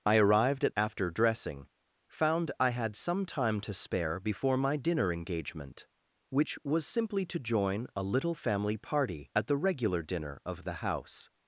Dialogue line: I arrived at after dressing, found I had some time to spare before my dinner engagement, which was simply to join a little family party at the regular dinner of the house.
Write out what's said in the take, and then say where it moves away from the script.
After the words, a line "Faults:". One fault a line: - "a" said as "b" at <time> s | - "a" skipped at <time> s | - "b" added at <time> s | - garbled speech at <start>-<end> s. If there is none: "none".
I arrived at after dressing, found I had some time to spare before my dinner engagement, which was simply to join a little family party at the regular dinner of the house.
Faults:
none